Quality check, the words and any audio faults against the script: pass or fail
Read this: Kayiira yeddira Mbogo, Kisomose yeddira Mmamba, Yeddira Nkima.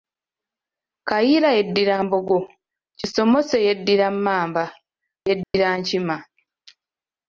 fail